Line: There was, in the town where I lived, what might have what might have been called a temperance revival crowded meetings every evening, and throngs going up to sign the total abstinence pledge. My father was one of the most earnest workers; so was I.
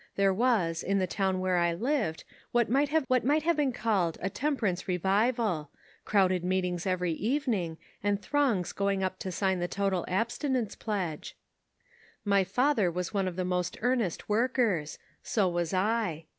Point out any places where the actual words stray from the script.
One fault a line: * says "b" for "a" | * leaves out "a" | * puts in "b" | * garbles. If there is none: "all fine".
all fine